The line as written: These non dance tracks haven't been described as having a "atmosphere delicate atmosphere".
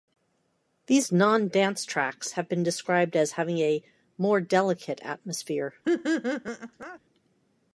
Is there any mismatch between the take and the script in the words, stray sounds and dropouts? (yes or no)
yes